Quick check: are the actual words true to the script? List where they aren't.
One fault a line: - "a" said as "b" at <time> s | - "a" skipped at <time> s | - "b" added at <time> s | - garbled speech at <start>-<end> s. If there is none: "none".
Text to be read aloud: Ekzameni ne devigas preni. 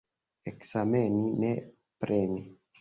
- "devigas" skipped at 1.5 s